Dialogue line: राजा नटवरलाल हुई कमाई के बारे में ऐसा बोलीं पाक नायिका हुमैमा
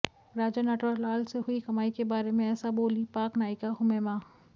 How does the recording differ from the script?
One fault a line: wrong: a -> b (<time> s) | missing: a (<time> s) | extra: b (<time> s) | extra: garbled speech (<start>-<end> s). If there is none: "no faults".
extra: से (1.2 s)